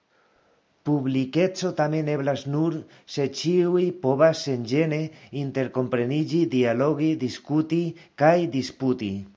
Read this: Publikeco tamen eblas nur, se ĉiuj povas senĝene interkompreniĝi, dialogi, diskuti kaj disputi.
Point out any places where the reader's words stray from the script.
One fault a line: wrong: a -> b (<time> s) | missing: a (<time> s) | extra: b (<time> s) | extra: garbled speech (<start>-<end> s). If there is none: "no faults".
no faults